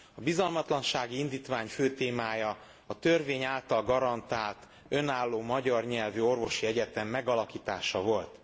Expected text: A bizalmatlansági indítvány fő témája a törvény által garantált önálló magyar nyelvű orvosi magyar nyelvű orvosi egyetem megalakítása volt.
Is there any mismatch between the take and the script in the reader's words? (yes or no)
yes